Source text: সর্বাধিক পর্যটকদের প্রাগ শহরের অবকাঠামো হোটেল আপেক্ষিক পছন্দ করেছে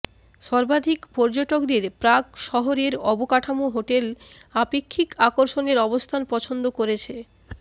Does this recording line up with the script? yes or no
no